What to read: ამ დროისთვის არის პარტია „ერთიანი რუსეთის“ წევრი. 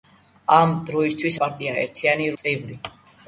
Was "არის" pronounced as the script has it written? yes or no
no